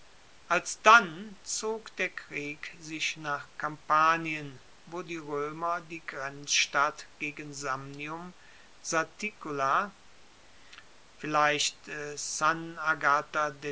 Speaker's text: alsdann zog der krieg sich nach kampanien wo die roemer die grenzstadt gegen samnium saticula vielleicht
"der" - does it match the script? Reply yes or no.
yes